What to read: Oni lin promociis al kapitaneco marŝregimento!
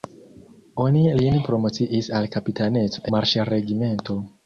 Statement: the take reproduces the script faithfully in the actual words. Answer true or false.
true